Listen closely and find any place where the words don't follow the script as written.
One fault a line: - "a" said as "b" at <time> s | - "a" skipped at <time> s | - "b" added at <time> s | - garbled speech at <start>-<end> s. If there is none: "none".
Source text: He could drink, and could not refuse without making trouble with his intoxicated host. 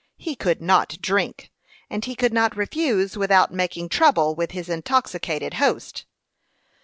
- "not" added at 0.6 s
- "he" added at 2.0 s